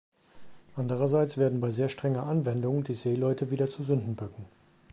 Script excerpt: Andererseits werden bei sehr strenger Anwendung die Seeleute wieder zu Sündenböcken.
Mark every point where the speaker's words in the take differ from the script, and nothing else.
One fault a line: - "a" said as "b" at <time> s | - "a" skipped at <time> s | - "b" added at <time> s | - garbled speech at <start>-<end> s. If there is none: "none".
none